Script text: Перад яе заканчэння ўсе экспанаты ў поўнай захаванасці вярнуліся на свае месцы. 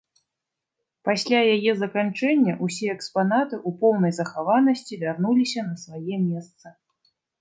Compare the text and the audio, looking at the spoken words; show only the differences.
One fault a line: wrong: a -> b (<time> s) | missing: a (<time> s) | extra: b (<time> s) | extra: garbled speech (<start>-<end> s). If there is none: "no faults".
wrong: Перад -> Пасля (1.1 s)